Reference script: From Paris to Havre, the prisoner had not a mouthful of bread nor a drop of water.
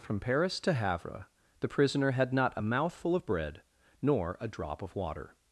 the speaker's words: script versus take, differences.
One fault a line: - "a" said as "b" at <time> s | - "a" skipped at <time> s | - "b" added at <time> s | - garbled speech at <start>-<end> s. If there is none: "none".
none